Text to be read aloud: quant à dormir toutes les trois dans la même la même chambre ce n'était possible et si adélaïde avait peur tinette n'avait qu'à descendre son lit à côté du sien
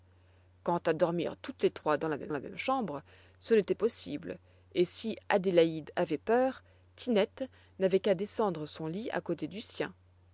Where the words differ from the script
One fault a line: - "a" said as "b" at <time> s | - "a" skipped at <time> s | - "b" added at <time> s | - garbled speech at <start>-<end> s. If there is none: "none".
none